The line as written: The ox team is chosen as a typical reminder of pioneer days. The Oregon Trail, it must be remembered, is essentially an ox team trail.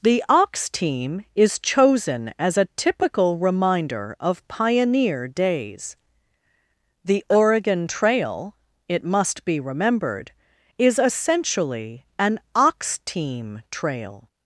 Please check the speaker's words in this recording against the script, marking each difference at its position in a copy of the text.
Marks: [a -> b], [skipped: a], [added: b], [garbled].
The ox team is chosen as a typical reminder of pioneer days. The Oregon Trail, it must be remembered, is essentially an ox team trail.